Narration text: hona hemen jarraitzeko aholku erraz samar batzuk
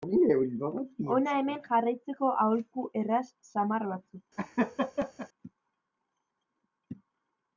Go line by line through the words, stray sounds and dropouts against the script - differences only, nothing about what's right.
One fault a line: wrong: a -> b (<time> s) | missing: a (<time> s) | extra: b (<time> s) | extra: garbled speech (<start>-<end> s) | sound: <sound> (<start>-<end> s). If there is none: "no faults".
sound: laugh (4.4-5.3 s)